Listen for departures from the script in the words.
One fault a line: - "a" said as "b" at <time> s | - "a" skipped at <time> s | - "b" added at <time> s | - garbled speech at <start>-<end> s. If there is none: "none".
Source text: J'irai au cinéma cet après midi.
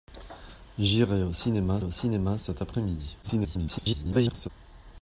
- "au cinéma" added at 1.8 s
- garbled speech at 3.2-4.5 s